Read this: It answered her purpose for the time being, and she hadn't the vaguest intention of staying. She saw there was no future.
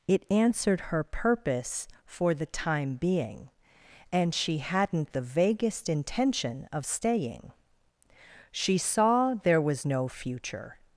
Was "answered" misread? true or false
false